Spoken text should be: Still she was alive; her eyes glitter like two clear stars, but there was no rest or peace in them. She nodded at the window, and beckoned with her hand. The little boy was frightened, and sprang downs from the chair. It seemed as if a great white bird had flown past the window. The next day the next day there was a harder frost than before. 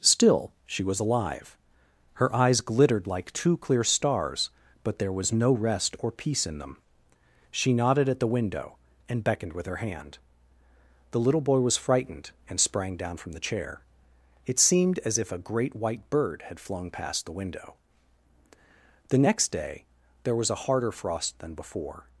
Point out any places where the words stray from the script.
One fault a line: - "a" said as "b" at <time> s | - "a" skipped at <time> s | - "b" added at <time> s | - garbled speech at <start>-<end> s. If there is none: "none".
- "glitter" said as "glittered" at 2.6 s
- "downs" said as "down" at 13.0 s
- "the next day" skipped at 19.9 s